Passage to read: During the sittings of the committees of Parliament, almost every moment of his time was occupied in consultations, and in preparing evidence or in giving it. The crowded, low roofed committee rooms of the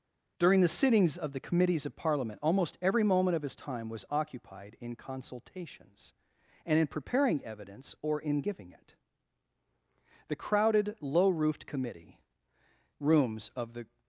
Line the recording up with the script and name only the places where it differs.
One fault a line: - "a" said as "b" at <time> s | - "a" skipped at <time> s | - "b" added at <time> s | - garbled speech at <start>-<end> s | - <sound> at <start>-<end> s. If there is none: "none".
none